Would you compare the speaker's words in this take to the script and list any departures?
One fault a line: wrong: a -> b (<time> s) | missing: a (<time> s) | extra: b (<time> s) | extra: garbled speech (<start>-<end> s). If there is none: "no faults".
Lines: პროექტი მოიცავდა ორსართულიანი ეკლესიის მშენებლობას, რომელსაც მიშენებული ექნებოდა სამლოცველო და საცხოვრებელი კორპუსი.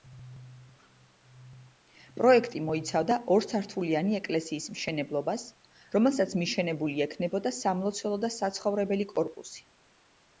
no faults